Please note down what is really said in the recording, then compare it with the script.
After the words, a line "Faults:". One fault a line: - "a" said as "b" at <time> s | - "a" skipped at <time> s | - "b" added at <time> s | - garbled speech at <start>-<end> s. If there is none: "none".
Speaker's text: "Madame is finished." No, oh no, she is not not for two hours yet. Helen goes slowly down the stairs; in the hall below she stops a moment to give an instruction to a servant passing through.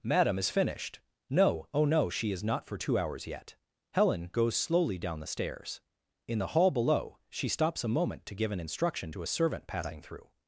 "Madame is finished." No, oh no, she is not for two hours yet. Helen goes slowly down the stairs; in the hall below she stops a moment to give an instruction to a servant passing through.
Faults:
- "not" skipped at 2.6 s